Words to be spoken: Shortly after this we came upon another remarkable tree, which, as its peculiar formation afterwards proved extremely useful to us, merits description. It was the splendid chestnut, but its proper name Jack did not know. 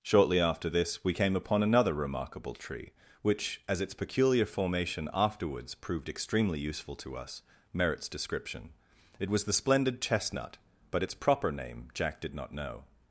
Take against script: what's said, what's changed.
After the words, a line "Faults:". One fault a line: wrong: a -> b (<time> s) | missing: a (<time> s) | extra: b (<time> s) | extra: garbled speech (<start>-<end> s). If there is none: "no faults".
Shortly after this we came upon another remarkable tree, which, as its peculiar formation afterwards proved extremely useful to us, merits description. It was the splendid chestnut, but its proper name Jack did not know.
Faults:
no faults